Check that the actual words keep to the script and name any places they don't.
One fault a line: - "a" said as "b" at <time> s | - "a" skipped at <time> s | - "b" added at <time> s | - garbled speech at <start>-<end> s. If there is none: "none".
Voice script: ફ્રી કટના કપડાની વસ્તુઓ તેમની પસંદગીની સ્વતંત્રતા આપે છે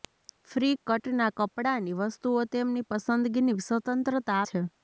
- "આપે" skipped at 4.4 s